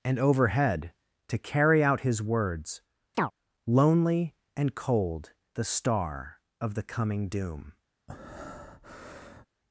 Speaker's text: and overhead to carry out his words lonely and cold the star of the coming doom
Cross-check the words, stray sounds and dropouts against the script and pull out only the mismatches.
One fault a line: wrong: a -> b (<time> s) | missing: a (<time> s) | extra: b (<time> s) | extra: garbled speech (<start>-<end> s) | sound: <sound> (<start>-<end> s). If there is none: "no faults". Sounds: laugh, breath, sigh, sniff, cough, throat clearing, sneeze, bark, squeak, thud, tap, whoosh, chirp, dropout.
sound: chirp (3.1-3.3 s)
sound: breath (8.1-9.5 s)